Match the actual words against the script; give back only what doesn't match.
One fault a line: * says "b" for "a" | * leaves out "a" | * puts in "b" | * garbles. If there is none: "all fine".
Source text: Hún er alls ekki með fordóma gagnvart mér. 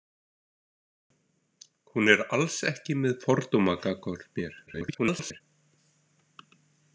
* garbles